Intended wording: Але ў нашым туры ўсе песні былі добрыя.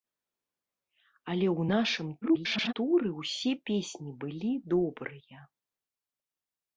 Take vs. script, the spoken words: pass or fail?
fail